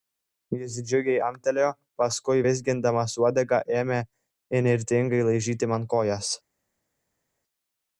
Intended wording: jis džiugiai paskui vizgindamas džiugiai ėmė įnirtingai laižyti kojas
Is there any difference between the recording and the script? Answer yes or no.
yes